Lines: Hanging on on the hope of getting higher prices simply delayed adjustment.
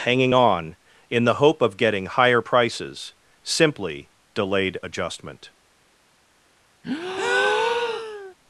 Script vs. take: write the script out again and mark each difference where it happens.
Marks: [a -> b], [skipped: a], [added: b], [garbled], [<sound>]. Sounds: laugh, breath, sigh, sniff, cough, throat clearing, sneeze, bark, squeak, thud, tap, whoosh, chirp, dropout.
Hanging on [on -> in] the hope of getting higher prices simply delayed adjustment. [breath]